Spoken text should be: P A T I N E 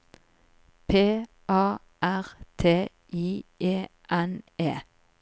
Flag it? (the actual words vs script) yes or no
yes